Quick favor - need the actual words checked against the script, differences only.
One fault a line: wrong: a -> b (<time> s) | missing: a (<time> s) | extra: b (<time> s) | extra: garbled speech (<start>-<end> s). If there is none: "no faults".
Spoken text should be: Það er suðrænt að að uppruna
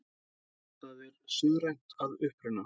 missing: að (2.2 s)